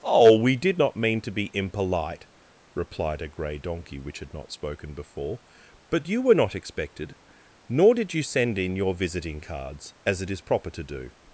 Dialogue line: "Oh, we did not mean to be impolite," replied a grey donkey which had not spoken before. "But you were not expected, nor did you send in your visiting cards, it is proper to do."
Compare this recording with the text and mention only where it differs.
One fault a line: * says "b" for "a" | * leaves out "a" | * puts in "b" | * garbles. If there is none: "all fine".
* puts in "as"